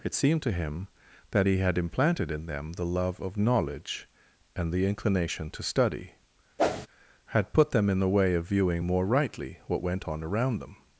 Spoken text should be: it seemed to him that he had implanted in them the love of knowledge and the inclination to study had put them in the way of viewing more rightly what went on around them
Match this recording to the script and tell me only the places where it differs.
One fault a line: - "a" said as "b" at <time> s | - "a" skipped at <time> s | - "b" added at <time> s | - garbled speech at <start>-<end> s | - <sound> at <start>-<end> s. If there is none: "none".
- whoosh at 6.6-6.9 s